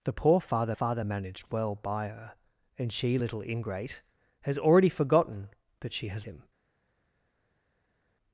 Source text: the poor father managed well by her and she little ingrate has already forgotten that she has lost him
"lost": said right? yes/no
no